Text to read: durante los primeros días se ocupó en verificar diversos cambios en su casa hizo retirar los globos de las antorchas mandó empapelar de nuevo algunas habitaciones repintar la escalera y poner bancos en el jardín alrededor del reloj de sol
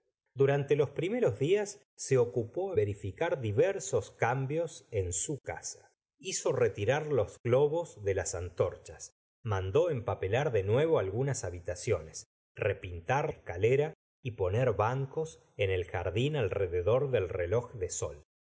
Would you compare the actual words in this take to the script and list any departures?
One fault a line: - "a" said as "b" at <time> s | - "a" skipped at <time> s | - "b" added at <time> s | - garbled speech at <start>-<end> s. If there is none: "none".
- "en" skipped at 2.7 s
- "la" skipped at 13.3 s